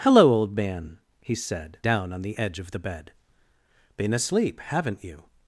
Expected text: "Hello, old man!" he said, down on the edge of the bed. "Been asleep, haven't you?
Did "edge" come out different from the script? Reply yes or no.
no